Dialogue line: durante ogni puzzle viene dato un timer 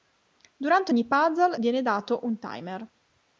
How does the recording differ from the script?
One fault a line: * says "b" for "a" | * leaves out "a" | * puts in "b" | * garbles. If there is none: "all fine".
all fine